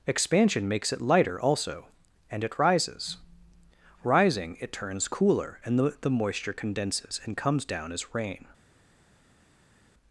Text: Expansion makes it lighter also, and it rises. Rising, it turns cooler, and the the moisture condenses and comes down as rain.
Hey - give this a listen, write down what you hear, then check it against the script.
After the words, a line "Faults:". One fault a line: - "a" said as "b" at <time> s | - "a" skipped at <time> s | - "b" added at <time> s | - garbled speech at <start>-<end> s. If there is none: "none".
Expansion makes it lighter also, and it rises. Rising, it turns cooler, and the the moisture condenses and comes down as rain.
Faults:
none